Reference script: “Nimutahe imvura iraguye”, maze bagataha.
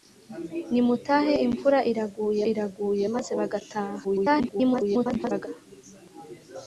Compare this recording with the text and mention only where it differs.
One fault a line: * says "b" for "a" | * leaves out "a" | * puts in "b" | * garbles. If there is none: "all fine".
* puts in "iraguye"
* garbles